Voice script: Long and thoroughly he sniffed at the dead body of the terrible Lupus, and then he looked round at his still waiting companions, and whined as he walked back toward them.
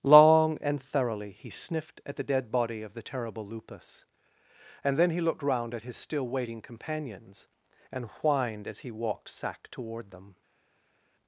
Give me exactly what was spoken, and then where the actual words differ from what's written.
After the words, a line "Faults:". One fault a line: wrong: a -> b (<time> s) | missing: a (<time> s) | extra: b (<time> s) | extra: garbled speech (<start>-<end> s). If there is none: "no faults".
Long and thoroughly he sniffed at the dead body of the terrible Lupus, and then he looked round at his still waiting companions, and whined as he walked sack toward them.
Faults:
wrong: back -> sack (9.3 s)